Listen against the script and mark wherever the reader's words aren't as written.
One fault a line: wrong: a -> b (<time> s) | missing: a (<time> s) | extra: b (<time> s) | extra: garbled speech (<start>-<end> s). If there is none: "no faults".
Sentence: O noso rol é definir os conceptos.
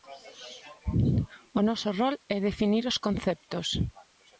no faults